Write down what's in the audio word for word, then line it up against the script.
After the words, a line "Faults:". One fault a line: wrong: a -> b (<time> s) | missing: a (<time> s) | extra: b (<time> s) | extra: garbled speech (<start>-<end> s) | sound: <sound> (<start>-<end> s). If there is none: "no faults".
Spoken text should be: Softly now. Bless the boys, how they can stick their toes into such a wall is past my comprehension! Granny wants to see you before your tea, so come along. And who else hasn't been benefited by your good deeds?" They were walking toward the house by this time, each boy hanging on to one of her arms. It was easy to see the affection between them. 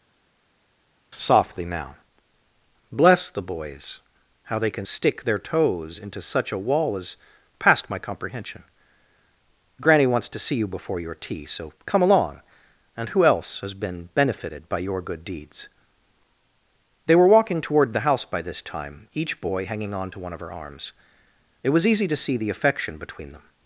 Softly now. Bless the boys, how they can stick their toes into such a wall is past my comprehension! Granny wants to see you before your tea, so come along. And who else has been benefited by your good deeds?" They were walking toward the house by this time, each boy hanging on to one of her arms. It was easy to see the affection between them.
Faults:
wrong: hasn't -> has (13.6 s)